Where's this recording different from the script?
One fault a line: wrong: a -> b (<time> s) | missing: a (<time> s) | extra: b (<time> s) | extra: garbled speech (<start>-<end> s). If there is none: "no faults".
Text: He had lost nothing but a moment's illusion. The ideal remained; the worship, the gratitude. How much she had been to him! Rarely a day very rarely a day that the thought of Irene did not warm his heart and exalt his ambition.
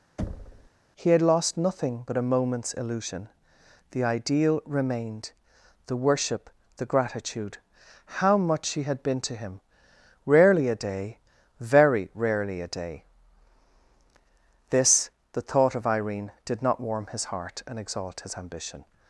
wrong: that -> this (14.7 s)